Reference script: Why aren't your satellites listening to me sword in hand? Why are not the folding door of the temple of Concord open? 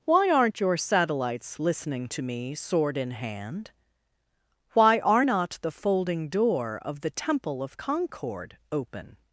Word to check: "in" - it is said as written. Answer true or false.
true